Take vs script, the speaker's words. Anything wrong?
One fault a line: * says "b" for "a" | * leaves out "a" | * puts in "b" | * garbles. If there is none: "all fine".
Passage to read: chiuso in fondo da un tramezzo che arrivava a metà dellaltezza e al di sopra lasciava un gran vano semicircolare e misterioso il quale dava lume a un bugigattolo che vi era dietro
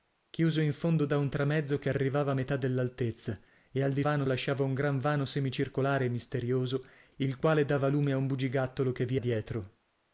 * says "vano" for "sopra"
* leaves out "era"